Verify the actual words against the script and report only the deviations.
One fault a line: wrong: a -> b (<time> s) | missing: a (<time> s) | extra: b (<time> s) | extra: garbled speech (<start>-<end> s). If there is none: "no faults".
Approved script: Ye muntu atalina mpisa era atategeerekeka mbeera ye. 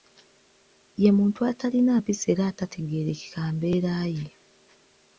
no faults